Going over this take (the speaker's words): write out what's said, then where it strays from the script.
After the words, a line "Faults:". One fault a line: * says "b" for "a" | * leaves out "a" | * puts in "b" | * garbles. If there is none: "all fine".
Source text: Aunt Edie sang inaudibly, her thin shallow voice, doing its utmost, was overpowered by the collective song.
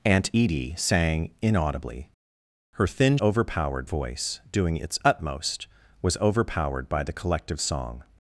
Aunt Edie sang inaudibly, her thin overpowered voice, doing its utmost, was overpowered by the collective song.
Faults:
* says "overpowered" for "shallow"